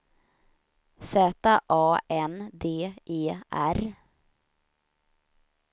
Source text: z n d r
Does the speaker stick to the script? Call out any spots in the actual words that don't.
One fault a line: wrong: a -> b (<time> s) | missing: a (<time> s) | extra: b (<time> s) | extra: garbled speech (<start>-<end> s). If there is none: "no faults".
extra: a (1.7 s)
extra: e (3.0 s)